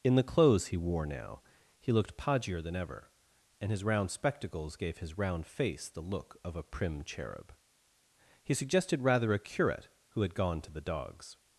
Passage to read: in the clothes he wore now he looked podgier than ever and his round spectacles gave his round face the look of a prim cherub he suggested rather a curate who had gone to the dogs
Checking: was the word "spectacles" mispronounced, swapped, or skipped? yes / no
no